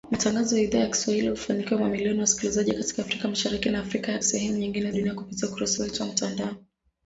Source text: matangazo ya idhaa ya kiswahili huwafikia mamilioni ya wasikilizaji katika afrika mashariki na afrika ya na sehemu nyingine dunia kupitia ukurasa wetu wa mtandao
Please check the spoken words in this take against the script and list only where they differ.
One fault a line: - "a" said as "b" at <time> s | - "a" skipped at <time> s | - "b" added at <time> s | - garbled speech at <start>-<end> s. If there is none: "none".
none